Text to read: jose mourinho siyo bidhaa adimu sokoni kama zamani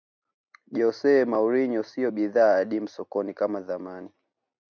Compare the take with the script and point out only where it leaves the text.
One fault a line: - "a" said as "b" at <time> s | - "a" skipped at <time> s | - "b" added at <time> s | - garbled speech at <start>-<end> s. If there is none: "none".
none